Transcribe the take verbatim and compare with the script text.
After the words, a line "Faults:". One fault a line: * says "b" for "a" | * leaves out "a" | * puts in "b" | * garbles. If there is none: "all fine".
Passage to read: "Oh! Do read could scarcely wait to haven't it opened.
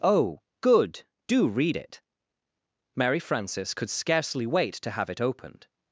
"Oh, good! Do read it!" Mary Frances could scarcely wait to have it opened.
Faults:
* puts in "good"
* puts in "it Mary Frances"
* says "have" for "haven't"